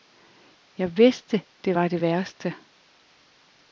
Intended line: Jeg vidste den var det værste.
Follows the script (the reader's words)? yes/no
no